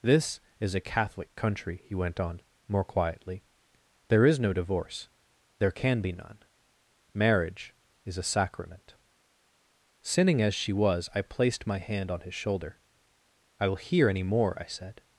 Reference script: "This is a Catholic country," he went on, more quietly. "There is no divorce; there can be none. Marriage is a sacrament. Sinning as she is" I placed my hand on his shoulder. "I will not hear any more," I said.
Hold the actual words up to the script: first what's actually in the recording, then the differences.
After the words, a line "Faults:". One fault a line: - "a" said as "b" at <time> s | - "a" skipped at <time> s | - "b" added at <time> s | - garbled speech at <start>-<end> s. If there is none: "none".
"This is a Catholic country," he went on, more quietly. "There is no divorce; there can be none. Marriage is a sacrament. Sinning as she was" I placed my hand on his shoulder. "I will hear any more," I said.
Faults:
- "is" said as "was" at 10.7 s
- "not" skipped at 13.8 s